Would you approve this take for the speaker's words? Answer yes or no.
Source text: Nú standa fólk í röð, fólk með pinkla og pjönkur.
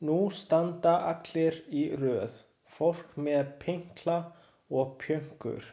no